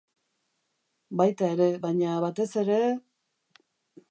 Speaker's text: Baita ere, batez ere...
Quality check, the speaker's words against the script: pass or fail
fail